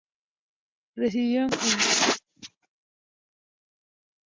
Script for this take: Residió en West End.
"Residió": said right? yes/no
yes